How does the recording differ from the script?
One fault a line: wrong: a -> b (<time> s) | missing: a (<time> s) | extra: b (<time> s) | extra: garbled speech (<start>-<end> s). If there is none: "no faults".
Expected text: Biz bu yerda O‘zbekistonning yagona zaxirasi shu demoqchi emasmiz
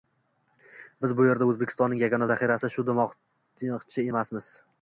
no faults